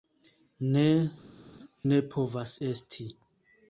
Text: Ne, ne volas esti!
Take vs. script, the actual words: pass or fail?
fail